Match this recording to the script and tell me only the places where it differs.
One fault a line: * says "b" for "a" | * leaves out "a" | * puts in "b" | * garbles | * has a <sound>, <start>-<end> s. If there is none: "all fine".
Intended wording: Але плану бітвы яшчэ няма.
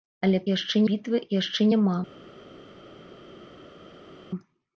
* says "яшчэ" for "плану"